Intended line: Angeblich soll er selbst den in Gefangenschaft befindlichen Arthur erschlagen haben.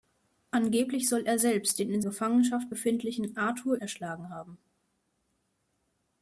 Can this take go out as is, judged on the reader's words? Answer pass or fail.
pass